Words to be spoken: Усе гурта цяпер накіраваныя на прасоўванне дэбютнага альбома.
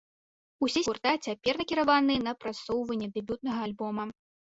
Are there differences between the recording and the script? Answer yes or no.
no